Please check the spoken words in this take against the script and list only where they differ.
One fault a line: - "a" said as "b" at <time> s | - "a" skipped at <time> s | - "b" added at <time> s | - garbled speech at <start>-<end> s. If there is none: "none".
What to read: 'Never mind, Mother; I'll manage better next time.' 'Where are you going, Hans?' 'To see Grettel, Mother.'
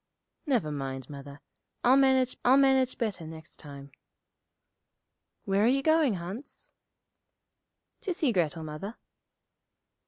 - "I'll manage" added at 2.4 s